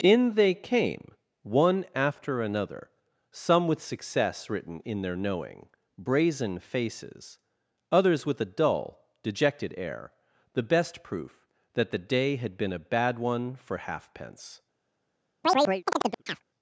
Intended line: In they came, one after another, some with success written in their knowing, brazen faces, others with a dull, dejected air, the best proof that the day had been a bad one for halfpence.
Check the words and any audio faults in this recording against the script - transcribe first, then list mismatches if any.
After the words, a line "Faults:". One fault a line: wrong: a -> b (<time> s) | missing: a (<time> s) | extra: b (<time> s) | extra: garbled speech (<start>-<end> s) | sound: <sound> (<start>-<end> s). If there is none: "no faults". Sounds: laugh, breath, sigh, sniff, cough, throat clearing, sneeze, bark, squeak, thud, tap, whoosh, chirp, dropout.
In they came, one after another, some with success written in their knowing, brazen faces, others with a dull, dejected air, the best proof that the day had been a bad one for halfpence.
Faults:
sound: chirp (15.4-16.4 s)